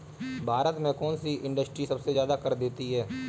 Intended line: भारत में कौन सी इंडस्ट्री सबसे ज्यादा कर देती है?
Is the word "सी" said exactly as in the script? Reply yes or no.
yes